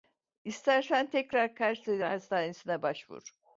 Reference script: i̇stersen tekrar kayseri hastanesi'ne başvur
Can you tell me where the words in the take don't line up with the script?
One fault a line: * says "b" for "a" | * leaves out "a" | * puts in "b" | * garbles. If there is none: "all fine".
all fine